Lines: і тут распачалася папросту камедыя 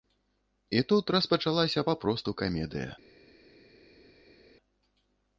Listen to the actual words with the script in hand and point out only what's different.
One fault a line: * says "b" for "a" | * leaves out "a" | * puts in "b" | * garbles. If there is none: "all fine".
all fine